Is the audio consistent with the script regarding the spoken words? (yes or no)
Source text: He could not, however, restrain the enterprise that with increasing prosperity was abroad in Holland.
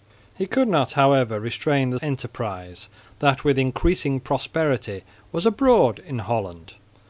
yes